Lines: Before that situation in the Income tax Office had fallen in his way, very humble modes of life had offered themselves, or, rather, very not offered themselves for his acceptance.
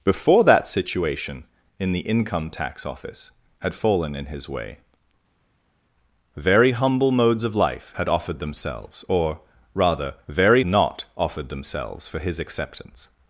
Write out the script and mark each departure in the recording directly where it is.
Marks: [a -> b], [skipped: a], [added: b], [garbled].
Before that situation in the Income tax Office had fallen in his way, very humble modes of life had offered themselves, or, rather, very not offered themselves for his acceptance.